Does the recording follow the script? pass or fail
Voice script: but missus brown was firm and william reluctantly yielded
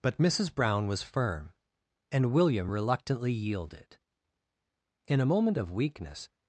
fail